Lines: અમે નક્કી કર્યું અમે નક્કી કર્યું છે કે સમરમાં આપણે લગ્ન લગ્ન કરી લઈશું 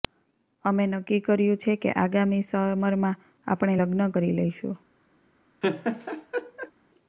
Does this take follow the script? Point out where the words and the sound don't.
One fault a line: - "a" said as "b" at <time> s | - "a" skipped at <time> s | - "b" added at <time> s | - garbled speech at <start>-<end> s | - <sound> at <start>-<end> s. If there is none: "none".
- "અમે નક્કી કર્યું" skipped at 1.6 s
- "આગામી" added at 1.9 s
- "લગ્ન" skipped at 4.1 s
- laugh at 5.6-6.7 s